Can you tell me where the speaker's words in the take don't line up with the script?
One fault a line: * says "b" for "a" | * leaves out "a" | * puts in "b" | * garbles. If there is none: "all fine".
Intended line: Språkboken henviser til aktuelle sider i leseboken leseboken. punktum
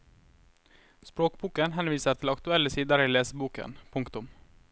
* leaves out "leseboken"